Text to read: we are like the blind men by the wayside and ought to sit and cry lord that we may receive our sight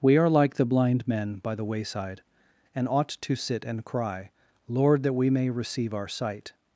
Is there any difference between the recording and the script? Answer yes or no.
no